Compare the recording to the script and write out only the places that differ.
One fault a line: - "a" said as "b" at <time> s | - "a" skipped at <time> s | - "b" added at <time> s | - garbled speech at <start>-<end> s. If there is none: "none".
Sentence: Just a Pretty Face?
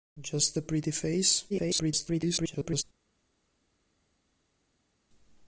- garbled speech at 1.5-2.8 s